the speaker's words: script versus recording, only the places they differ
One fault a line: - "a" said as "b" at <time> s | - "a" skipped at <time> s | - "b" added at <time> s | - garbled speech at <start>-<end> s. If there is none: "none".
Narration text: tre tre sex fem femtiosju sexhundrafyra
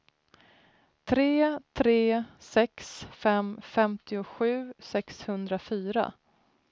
none